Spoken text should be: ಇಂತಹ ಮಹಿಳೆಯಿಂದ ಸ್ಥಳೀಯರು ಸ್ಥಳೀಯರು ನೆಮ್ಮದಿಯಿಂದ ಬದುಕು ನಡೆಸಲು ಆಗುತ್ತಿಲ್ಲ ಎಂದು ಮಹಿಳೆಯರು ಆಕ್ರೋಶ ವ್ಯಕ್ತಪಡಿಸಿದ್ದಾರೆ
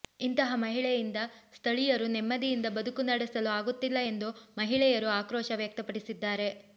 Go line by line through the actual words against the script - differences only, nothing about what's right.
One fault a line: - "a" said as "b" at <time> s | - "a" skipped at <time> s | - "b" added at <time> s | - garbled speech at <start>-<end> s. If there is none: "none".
- "ಸ್ಥಳೀಯರು" skipped at 2.1 s